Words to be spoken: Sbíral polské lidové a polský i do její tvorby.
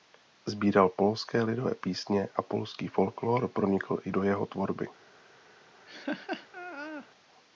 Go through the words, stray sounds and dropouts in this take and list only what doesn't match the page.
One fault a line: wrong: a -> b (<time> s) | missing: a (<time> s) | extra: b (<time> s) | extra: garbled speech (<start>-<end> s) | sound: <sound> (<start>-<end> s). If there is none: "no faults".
extra: písně (1.8 s)
extra: folklór pronikl (2.9 s)
wrong: její -> jeho (4.2 s)
sound: laugh (5.9-7.1 s)